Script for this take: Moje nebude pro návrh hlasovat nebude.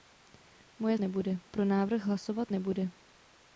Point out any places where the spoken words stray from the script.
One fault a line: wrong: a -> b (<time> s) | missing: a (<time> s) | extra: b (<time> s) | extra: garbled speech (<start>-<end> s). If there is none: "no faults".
no faults